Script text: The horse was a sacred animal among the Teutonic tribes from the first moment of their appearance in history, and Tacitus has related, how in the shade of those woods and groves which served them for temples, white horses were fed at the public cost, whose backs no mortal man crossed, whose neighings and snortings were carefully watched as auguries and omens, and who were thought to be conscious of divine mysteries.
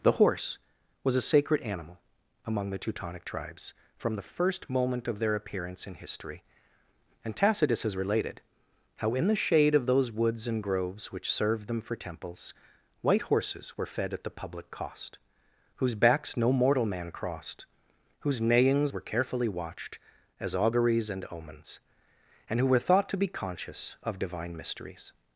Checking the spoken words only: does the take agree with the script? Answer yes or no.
no